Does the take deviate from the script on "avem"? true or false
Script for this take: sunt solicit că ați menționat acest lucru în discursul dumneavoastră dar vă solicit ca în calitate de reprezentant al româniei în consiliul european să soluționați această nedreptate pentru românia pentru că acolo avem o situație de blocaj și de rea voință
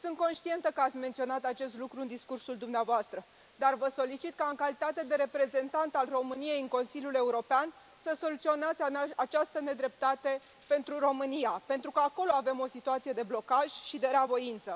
false